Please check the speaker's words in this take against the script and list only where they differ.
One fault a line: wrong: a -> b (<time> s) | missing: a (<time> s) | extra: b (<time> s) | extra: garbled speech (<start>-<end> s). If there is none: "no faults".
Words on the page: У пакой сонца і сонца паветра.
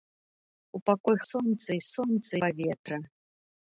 no faults